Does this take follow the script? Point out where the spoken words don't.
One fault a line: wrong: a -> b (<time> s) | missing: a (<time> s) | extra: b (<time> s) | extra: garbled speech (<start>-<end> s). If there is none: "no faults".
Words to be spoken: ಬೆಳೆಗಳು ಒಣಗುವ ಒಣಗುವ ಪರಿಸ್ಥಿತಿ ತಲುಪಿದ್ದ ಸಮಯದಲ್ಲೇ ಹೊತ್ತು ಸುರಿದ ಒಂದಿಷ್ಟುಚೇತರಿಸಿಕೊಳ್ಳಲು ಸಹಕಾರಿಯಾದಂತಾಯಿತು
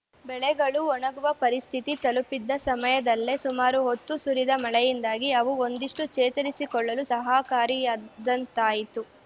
missing: ಒಣಗುವ (1.3 s)
extra: ಸುಮಾರು (3.4 s)
extra: ಮಳೆಯಿಂದಾಗಿ ಅವು (4.6 s)